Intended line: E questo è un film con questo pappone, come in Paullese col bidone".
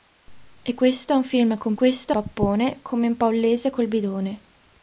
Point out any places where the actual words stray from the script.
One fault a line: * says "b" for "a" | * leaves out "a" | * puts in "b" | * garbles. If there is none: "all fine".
all fine